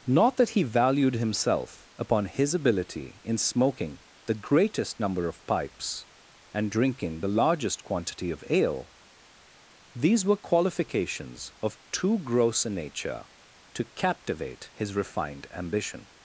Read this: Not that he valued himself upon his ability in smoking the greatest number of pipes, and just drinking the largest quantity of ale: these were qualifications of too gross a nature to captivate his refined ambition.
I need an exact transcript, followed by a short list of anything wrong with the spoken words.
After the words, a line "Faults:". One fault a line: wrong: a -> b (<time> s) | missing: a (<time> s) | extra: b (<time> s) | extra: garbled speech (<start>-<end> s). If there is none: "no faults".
Not that he valued himself upon his ability in smoking the greatest number of pipes, and drinking the largest quantity of ale: these were qualifications of too gross a nature to captivate his refined ambition.
Faults:
missing: just (6.7 s)